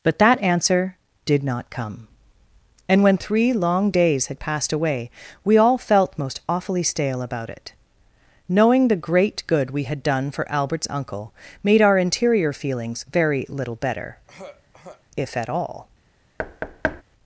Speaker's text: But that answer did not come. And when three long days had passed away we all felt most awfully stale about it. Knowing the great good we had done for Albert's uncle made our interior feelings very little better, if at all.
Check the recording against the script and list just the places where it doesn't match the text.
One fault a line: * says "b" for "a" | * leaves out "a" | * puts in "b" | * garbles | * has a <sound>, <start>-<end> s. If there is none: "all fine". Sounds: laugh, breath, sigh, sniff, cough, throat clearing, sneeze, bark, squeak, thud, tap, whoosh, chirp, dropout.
* has a throat clearing, 14.3-15.0 s
* has a thud, 16.4-17.0 s